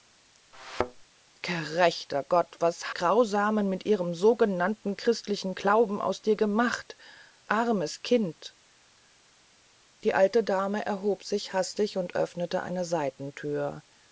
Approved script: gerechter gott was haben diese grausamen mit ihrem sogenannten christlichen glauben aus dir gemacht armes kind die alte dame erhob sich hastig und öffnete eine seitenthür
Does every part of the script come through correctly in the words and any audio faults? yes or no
no